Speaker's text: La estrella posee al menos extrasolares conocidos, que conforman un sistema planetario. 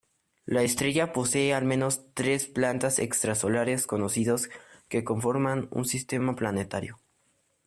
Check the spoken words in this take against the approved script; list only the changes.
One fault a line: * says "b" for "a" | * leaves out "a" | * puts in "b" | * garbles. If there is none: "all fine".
* puts in "tres planetas"